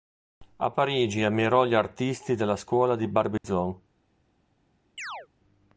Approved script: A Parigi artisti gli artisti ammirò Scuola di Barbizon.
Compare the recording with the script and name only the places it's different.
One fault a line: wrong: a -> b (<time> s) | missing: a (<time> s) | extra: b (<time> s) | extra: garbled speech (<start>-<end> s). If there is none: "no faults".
wrong: artisti -> ammirò (1.2 s)
wrong: ammirò -> della (2.4 s)